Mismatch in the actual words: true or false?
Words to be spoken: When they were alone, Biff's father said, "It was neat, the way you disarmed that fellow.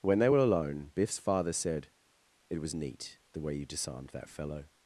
false